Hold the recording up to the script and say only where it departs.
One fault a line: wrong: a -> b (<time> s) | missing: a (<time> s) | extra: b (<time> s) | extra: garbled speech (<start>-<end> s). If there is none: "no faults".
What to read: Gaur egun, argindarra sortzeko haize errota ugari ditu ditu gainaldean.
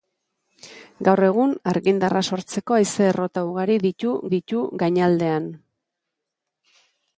no faults